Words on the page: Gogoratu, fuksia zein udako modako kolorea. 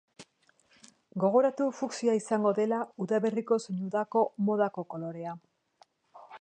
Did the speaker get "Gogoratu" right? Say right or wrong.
right